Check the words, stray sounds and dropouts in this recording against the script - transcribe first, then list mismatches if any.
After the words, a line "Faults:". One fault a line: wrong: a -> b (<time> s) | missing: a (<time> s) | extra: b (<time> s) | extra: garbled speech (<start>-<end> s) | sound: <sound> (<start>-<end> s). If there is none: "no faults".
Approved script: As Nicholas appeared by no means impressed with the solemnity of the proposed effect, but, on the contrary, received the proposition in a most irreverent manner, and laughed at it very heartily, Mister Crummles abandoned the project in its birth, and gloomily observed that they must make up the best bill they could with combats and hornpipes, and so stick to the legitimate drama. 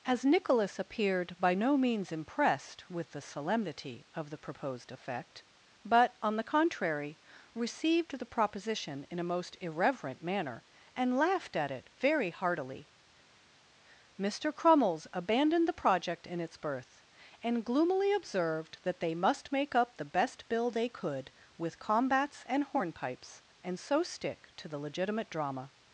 As Nicholas appeared by no means impressed with the solemnity of the proposed effect, but, on the contrary, received the proposition in a most irreverent manner, and laughed at it very heartily, Mister Crummles abandoned the project in its birth, and gloomily observed that they must make up the best bill they could with combats and hornpipes, and so stick to the legitimate drama.
Faults:
no faults